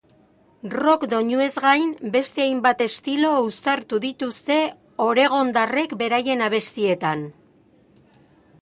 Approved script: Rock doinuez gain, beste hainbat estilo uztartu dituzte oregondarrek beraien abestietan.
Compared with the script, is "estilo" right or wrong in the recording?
right